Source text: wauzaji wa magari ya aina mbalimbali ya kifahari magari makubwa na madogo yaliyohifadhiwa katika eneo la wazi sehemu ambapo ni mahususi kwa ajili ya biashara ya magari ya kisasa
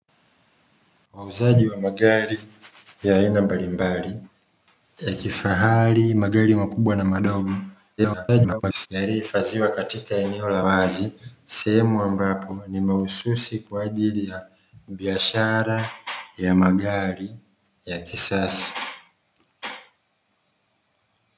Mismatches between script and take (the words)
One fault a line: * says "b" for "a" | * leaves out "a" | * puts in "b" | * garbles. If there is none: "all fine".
* garbles